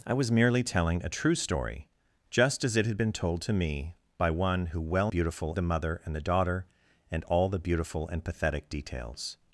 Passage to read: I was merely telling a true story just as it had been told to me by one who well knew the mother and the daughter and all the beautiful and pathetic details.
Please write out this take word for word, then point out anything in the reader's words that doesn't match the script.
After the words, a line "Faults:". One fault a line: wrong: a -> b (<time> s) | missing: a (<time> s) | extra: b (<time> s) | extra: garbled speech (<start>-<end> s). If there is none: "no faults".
I was merely telling a true story just as it had been told to me by one who well beautiful the mother and the daughter and all the beautiful and pathetic details.
Faults:
wrong: knew -> beautiful (5.1 s)